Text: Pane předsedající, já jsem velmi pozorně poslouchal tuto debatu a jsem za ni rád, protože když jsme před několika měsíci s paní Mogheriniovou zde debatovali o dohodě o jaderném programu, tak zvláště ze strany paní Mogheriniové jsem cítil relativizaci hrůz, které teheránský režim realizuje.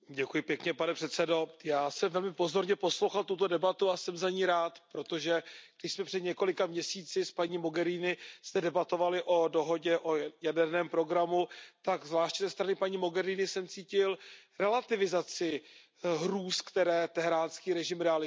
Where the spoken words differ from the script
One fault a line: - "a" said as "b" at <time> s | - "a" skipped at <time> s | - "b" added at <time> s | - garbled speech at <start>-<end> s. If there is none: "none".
none